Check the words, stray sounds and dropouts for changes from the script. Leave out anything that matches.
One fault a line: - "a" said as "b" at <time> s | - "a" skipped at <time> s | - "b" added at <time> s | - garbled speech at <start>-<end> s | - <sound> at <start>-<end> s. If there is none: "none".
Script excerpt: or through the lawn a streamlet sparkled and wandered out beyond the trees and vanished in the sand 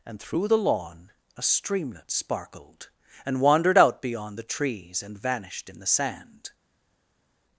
- "or" said as "and" at 0.0 s